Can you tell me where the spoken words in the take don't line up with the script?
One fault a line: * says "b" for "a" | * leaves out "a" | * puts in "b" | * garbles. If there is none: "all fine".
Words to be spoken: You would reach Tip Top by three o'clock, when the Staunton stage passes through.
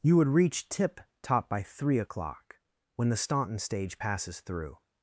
all fine